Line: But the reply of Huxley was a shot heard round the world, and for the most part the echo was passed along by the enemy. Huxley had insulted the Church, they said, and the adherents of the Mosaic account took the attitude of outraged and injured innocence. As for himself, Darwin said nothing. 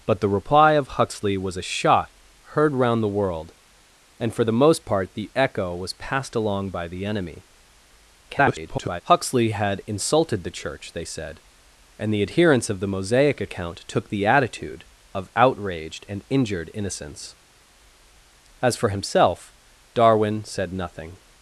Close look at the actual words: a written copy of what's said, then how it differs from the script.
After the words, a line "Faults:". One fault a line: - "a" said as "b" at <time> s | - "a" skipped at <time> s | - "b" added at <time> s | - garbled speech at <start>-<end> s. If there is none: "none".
But the reply of Huxley was a shot heard round the world, and for the most part the echo was passed along by the enemy. [garbled] Huxley had insulted the Church, they said, and the adherents of the Mosaic account took the attitude of outraged and injured innocence. As for himself, Darwin said nothing.
Faults:
- garbled speech at 8.3-9.0 s